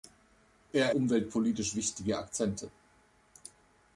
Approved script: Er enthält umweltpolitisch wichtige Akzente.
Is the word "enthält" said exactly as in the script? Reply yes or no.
no